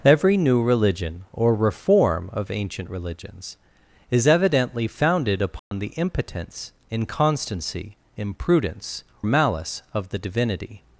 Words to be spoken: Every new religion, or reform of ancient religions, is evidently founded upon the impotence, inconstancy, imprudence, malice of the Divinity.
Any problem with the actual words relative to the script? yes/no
no